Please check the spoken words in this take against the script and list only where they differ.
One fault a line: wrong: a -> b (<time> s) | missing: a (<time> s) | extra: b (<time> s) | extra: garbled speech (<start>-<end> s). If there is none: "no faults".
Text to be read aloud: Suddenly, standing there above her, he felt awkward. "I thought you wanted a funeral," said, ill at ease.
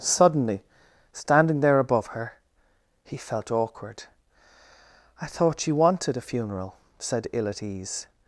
no faults